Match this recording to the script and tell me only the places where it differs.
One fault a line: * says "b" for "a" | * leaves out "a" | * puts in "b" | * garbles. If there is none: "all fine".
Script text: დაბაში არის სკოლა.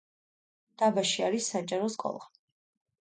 * puts in "საჯარო"